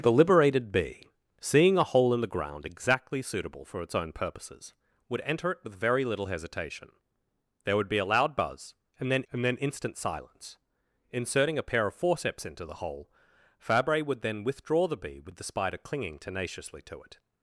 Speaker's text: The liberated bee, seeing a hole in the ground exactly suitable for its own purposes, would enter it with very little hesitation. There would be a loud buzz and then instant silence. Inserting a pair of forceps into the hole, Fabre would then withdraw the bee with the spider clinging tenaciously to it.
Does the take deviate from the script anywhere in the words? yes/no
yes